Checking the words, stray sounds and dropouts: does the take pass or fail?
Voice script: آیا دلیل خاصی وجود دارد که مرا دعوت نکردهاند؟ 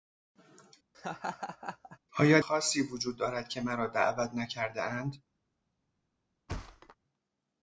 fail